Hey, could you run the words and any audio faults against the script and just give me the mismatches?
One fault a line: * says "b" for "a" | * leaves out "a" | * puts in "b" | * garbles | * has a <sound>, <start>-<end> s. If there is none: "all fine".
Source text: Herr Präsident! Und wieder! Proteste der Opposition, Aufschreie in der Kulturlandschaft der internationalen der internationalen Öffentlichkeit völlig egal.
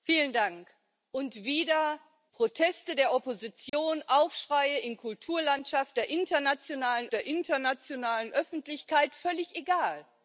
* has a dropout, 3.7-3.7 s